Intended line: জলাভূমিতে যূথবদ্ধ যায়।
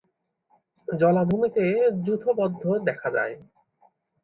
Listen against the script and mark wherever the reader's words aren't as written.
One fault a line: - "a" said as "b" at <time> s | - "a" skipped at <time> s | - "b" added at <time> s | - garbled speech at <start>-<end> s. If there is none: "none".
- "দেখা" added at 2.9 s